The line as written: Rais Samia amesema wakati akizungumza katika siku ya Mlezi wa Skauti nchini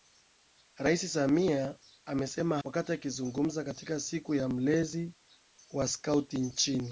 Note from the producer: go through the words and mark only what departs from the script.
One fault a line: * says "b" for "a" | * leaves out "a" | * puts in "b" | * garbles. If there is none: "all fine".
all fine